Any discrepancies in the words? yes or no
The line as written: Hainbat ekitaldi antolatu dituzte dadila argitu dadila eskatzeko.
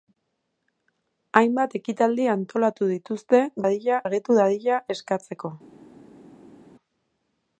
no